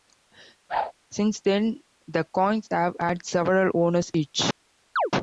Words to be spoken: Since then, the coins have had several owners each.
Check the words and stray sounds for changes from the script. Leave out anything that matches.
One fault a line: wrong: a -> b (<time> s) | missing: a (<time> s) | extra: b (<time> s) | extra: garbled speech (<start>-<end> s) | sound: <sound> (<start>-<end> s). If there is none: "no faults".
sound: whoosh (0.7-0.9 s)
sound: chirp (5.0-5.1 s)